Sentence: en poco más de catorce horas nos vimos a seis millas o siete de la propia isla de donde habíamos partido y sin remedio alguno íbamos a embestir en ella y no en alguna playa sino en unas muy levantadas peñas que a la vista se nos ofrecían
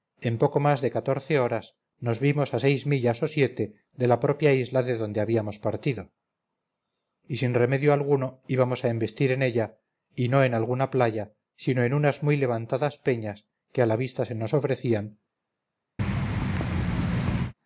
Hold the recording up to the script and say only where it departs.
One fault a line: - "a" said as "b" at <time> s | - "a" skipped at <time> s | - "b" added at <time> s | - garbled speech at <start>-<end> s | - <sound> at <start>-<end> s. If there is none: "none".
- thud at 16.0-17.5 s